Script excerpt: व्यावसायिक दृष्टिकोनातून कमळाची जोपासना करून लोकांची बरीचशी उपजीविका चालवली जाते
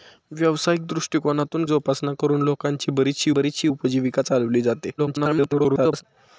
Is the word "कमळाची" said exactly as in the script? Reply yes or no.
no